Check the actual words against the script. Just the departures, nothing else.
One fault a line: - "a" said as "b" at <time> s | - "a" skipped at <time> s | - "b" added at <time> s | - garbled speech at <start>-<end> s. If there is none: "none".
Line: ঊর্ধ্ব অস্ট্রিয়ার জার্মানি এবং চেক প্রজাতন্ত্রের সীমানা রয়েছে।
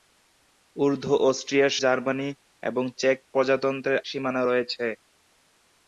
none